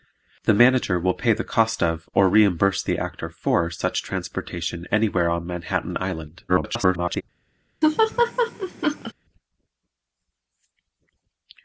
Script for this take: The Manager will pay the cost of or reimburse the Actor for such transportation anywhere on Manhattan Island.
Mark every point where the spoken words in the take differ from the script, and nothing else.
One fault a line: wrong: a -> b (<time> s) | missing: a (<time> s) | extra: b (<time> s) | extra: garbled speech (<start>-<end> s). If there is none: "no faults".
extra: garbled speech (6.5-7.2 s)